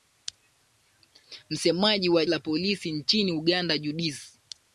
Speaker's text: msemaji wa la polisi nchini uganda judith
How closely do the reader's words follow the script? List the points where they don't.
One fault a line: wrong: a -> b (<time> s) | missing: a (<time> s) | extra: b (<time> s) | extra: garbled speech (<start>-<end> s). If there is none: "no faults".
no faults